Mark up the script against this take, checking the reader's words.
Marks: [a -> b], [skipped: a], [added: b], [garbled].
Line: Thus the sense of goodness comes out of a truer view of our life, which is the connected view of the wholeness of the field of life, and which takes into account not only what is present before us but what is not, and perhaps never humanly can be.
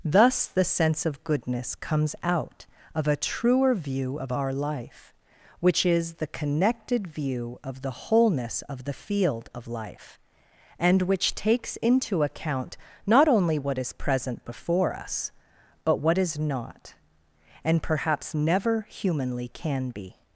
Thus the sense of goodness comes out of a truer view of our life, which is the connected view of the wholeness of the field of life, and which takes into account not only what is present before us but what is not, and perhaps never humanly can be.